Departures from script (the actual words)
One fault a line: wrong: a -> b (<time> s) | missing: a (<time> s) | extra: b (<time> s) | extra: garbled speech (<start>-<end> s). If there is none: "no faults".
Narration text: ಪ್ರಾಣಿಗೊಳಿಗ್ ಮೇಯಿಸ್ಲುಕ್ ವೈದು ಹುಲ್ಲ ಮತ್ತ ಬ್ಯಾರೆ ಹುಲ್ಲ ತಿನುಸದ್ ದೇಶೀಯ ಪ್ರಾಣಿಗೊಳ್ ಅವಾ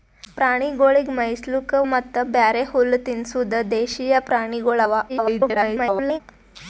missing: ವೈದು ಹುಲ್ಲ (1.8 s)
extra: garbled speech (5.1-6.2 s)